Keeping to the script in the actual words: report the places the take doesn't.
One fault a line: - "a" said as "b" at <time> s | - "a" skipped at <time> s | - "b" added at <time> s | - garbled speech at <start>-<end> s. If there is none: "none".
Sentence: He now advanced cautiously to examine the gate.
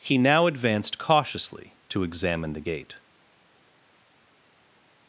none